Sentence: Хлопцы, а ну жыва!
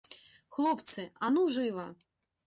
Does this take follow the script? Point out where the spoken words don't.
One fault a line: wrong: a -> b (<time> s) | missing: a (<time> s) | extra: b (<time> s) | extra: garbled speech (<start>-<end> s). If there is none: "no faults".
no faults